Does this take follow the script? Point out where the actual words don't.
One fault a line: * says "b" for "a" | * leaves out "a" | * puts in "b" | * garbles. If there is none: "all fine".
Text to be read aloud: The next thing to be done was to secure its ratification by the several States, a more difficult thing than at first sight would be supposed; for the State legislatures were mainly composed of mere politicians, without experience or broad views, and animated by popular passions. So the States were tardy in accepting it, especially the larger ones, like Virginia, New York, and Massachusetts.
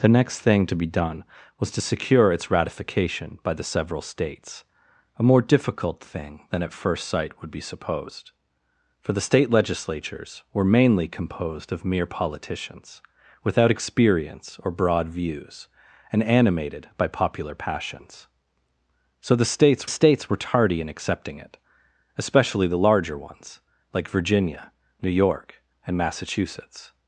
* puts in "States"